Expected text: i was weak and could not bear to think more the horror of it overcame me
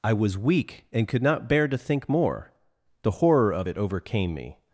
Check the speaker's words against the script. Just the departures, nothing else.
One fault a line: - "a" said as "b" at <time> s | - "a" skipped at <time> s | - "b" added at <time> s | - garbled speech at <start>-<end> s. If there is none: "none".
none